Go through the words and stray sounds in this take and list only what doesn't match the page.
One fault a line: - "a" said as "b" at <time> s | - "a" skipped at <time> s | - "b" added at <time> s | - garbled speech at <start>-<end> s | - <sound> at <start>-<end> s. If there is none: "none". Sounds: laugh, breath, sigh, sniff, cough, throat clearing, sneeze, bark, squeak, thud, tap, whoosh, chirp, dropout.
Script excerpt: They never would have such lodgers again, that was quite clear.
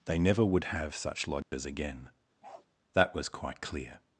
- dropout at 1.4-1.5 s
- bark at 2.4-2.7 s